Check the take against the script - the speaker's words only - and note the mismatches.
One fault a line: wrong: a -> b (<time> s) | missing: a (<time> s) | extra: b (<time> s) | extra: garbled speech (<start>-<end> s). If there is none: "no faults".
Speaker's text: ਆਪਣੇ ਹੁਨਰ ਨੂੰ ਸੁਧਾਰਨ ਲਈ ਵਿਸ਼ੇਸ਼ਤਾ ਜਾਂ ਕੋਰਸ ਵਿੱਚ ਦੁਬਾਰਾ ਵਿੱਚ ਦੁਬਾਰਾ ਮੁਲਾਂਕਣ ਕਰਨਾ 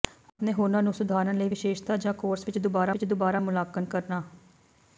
no faults